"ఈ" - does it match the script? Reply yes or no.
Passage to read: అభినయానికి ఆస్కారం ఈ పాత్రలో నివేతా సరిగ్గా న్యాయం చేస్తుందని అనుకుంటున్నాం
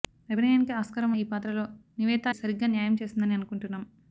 yes